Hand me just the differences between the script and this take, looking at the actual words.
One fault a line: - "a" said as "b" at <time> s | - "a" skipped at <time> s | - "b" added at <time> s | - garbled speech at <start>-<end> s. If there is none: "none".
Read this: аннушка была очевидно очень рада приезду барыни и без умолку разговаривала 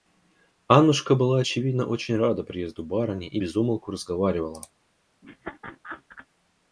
none